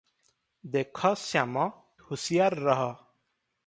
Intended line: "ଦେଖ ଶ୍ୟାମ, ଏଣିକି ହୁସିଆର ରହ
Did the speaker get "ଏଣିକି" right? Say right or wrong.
wrong